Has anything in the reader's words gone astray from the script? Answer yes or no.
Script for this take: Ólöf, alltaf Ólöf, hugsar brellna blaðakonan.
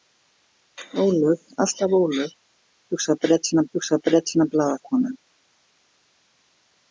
yes